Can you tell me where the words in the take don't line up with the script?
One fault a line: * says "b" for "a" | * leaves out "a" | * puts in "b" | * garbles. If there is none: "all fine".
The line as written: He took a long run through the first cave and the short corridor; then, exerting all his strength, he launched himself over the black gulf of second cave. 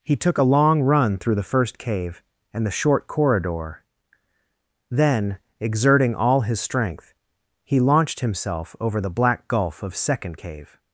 all fine